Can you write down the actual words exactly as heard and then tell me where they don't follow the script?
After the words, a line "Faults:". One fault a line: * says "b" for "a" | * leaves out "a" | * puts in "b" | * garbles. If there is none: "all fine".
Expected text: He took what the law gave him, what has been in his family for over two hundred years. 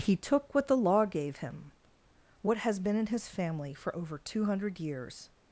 He took what the law gave him, what has been in his family for over two hundred years.
Faults:
all fine